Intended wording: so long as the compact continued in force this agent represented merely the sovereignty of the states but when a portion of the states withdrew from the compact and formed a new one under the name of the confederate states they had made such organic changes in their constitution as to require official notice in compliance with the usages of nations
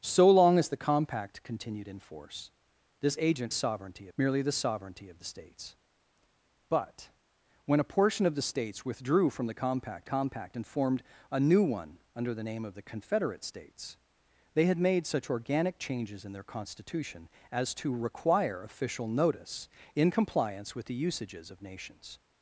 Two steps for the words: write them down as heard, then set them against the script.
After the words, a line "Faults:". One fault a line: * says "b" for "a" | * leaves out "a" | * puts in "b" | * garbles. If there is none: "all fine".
so long as the compact continued in force this agent sovereignty merely the sovereignty of the states but when a portion of the states withdrew from the compact compact and formed a new one under the name of the confederate states they had made such organic changes in their constitution as to require official notice in compliance with the usages of nations
Faults:
* says "sovereignty" for "represented"
* puts in "compact"